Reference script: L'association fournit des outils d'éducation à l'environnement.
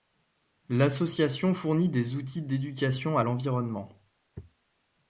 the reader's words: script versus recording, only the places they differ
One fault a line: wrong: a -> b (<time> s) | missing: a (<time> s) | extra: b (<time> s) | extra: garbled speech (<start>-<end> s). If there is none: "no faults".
no faults